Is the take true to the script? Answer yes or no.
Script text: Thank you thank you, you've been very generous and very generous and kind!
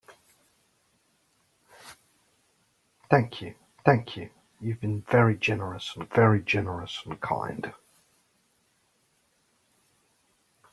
yes